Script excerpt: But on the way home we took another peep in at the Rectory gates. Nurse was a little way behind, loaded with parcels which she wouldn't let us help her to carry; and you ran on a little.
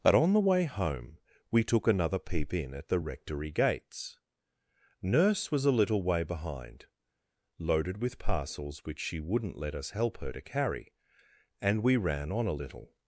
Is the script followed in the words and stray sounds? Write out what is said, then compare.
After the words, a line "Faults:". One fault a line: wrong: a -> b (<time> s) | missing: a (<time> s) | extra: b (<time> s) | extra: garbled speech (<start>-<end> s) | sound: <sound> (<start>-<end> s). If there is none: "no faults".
But on the way home we took another peep in at the Rectory gates. Nurse was a little way behind, loaded with parcels which she wouldn't let us help her to carry; and we ran on a little.
Faults:
wrong: you -> we (11.8 s)